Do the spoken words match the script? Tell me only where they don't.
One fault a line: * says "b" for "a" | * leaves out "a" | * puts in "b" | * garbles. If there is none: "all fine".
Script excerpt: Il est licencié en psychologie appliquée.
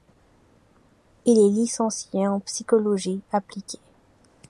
all fine